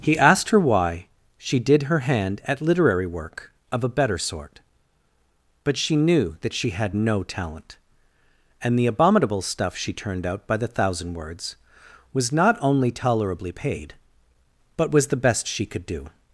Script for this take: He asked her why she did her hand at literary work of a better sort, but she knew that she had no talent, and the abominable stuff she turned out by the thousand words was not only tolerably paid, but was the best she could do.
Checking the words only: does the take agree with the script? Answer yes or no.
yes